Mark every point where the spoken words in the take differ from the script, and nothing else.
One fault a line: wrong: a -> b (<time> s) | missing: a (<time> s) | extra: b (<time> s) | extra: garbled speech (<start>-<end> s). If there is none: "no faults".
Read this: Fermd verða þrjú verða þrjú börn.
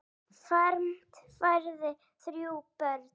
missing: verða þrjú (2.6 s)